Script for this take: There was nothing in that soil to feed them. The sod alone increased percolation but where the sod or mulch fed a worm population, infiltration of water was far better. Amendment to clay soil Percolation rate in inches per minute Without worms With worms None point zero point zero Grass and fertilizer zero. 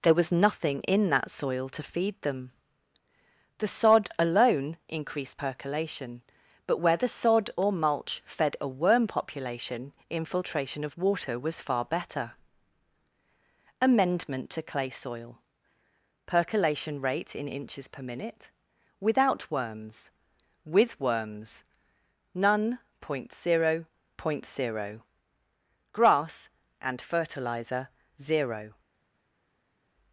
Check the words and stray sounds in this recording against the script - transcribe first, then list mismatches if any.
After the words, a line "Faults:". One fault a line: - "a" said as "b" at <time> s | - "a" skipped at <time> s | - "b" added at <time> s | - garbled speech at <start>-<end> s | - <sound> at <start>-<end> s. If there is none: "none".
There was nothing in that soil to feed them. The sod alone increased percolation but where the sod or mulch fed a worm population, infiltration of water was far better. Amendment to clay soil Percolation rate in inches per minute Without worms With worms None point zero point zero Grass and fertilizer zero.
Faults:
none